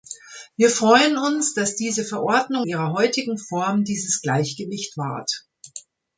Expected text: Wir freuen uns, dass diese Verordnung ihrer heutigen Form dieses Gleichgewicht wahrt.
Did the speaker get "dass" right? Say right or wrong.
right